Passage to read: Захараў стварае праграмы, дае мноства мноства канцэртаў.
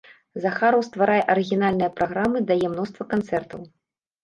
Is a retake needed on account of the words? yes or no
yes